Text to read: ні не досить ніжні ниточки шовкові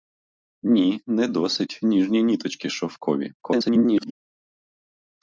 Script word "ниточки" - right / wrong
right